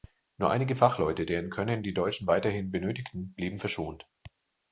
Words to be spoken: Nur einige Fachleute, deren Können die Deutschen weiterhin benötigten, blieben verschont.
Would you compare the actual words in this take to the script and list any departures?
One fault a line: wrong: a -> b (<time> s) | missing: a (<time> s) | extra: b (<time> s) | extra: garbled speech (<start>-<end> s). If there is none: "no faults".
no faults